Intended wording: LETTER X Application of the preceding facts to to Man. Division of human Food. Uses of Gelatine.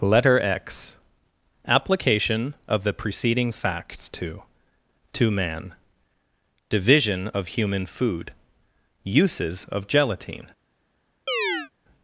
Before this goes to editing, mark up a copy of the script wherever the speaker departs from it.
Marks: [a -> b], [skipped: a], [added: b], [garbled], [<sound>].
LETTER X Application of the preceding facts to to Man. Division of human Food. Uses of Gelatine. [chirp]